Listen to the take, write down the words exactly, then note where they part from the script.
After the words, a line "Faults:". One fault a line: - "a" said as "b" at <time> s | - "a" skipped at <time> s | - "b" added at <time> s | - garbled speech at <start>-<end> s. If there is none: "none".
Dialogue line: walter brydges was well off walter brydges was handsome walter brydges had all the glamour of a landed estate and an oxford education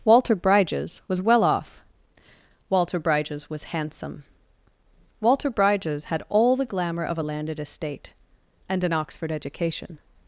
walter brydges was well off walter brydges was handsome walter brydges had all the glamour of a landed estate and an oxford education
Faults:
none